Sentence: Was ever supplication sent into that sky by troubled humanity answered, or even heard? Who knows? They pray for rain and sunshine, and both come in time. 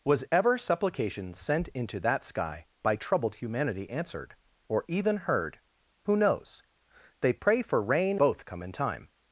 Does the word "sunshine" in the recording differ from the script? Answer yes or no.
yes